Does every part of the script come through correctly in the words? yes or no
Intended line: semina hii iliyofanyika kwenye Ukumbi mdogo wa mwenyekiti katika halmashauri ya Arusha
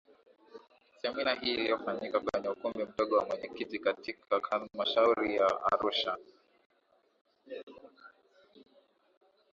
yes